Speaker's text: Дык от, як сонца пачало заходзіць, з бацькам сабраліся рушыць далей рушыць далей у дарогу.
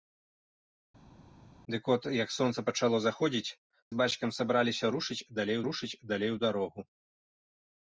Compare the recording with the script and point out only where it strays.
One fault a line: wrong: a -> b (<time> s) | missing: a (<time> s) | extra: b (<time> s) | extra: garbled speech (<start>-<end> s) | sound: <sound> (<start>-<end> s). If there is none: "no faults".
no faults